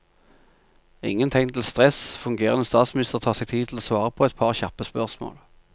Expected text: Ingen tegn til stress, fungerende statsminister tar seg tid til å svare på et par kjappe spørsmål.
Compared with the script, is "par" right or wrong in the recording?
right